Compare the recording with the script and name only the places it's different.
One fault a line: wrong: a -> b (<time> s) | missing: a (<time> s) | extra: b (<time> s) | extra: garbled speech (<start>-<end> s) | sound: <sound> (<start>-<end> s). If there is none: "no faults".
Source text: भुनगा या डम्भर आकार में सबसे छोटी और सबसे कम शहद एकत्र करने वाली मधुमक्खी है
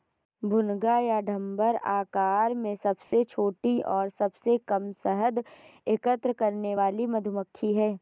sound: dropout (3.0-3.1 s)